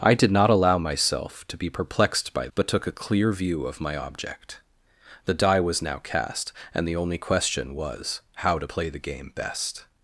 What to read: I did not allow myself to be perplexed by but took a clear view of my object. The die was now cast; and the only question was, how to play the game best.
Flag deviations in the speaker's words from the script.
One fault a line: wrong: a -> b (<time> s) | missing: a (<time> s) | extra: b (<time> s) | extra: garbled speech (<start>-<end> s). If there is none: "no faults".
no faults